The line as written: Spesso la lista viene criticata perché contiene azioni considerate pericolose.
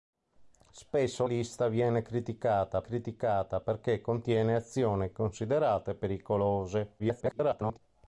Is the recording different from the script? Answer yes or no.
yes